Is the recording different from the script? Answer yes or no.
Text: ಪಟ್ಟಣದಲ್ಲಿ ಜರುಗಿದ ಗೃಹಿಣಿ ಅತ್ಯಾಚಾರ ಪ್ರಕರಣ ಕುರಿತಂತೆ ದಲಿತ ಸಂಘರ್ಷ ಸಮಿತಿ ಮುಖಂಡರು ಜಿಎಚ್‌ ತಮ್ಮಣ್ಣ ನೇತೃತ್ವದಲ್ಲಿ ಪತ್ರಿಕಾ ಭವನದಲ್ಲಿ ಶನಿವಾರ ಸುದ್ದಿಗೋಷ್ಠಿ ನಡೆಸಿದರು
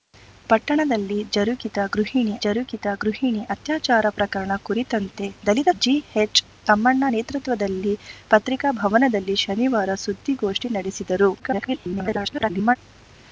yes